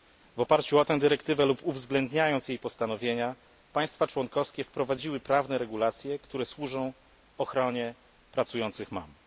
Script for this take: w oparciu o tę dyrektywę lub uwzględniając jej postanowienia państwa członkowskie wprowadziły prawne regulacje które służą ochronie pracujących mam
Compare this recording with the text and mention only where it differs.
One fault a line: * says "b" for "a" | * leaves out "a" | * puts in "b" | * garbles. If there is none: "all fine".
all fine